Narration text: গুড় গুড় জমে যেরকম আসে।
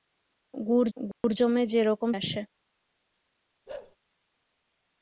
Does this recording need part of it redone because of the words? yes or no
no